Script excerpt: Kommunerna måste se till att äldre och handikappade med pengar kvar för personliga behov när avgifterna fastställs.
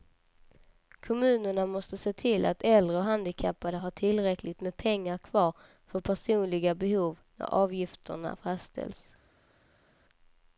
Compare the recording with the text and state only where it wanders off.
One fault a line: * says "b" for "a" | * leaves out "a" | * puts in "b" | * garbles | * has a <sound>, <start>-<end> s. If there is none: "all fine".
* puts in "har tillräckligt"